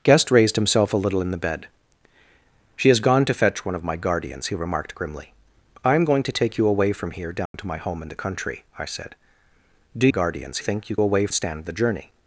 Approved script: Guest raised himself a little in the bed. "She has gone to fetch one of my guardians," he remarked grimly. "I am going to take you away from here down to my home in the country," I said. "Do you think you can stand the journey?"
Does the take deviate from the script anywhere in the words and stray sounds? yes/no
yes